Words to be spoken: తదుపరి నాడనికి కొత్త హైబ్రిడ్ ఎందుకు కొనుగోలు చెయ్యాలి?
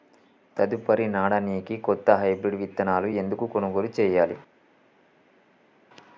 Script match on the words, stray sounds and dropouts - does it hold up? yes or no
no